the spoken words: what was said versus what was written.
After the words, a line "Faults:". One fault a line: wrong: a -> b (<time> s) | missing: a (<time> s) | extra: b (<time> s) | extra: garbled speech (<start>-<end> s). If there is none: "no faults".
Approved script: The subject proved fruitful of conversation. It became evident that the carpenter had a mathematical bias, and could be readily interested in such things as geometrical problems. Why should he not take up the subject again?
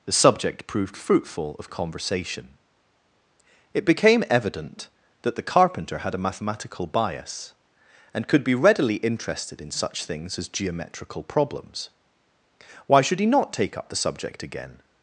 The subject proved fruitful of conversation. It became evident that the carpenter had a mathematical bias, and could be readily interested in such things as geometrical problems. Why should he not take up the subject again?
Faults:
no faults